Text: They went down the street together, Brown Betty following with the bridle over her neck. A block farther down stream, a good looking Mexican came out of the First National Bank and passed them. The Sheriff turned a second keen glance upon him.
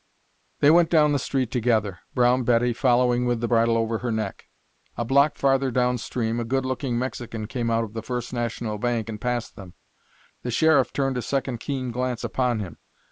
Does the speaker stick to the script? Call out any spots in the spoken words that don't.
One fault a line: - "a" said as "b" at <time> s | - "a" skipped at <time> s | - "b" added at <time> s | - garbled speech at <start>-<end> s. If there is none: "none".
none